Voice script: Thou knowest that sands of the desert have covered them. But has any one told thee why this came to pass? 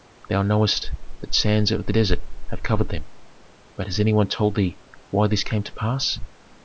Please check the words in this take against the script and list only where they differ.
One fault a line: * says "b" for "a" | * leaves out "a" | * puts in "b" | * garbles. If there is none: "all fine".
all fine